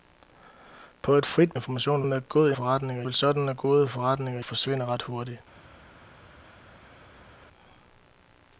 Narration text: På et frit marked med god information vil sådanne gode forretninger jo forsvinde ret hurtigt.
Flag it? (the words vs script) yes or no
yes